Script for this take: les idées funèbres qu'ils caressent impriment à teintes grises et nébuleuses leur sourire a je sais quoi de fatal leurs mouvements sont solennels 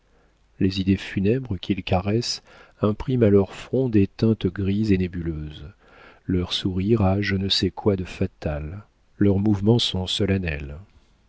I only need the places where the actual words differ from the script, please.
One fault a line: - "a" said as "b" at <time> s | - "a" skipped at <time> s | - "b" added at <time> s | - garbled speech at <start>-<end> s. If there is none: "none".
- "leur front des" added at 3.3 s
- "ne" added at 7.4 s